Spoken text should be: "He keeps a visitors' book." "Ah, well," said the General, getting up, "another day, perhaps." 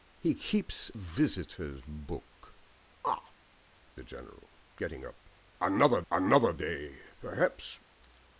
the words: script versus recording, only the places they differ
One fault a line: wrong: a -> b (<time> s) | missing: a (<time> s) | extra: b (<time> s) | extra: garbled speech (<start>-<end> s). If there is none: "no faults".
missing: a (0.9 s)
missing: well said (3.3 s)
extra: another (6.1 s)